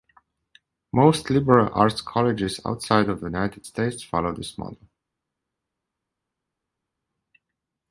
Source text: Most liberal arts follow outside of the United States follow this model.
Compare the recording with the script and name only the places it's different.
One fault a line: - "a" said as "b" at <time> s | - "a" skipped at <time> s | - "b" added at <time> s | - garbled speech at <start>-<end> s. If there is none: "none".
- "follow" said as "colleges" at 2.0 s